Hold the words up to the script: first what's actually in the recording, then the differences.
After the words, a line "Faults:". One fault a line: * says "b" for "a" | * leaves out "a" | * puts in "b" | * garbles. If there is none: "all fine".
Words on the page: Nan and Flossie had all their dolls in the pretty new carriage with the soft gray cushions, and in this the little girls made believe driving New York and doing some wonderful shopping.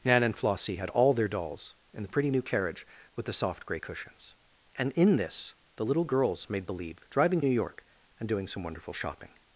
Nan and Flossie had all their dolls in the pretty new carriage with the soft gray cushions, and in this the little girls made believe driving New York and doing some wonderful shopping.
Faults:
all fine